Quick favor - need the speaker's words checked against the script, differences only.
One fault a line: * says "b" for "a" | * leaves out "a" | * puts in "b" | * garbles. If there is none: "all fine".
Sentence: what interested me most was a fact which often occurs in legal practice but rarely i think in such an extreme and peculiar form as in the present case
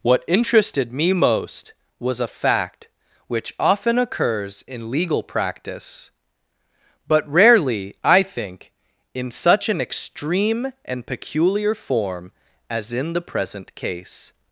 all fine